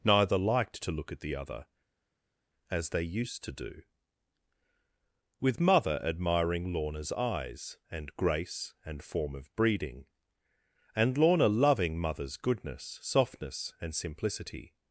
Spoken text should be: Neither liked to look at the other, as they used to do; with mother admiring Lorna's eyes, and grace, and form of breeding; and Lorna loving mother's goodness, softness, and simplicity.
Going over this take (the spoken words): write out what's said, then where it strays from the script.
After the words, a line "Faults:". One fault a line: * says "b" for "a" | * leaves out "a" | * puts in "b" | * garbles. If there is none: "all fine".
Neither liked to look at the other, as they used to do; with mother admiring Lorna's eyes, and grace, and form of breeding; and Lorna loving mother's goodness, softness, and simplicity.
Faults:
all fine